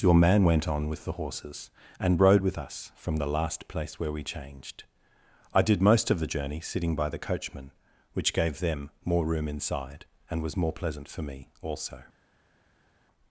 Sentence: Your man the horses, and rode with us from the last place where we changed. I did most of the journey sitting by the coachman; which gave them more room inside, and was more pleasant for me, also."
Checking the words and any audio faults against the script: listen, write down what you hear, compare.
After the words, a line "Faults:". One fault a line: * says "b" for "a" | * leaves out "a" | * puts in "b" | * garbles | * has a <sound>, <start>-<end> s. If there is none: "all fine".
Your man went on with the horses, and rode with us from the last place where we changed. I did most of the journey sitting by the coachman; which gave them more room inside, and was more pleasant for me, also."
Faults:
* puts in "went on with"